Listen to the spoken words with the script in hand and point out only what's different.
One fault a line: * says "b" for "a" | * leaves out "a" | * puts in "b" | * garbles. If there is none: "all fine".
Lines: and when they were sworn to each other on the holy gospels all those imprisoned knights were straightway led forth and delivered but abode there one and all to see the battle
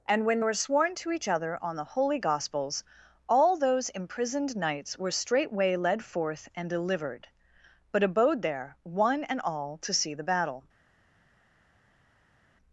* leaves out "they"